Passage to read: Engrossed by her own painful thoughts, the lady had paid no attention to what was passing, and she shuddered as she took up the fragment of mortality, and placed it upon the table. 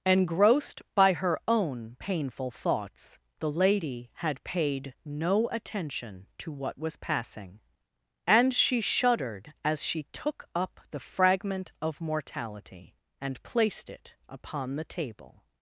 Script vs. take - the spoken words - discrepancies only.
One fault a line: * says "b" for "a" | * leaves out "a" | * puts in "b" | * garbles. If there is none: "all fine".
all fine